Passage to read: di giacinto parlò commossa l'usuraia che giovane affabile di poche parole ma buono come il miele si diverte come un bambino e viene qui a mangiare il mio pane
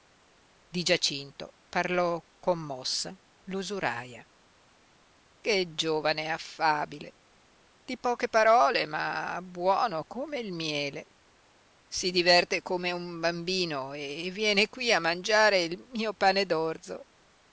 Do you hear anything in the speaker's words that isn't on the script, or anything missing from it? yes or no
no